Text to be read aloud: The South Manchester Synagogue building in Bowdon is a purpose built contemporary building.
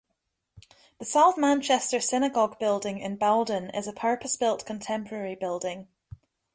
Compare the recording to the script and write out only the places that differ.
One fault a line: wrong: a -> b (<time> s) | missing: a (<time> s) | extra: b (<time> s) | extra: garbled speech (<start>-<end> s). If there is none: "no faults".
no faults